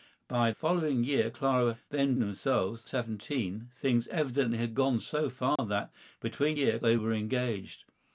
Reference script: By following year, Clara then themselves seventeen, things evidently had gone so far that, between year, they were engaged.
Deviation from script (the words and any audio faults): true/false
true